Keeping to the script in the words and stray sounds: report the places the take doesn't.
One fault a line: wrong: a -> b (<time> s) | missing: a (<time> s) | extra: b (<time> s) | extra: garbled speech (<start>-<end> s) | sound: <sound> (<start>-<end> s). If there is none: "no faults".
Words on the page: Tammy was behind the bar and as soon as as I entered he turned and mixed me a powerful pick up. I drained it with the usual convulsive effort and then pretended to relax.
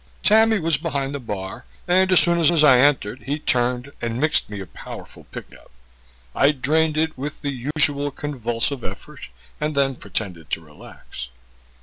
sound: dropout (7.7-7.8 s)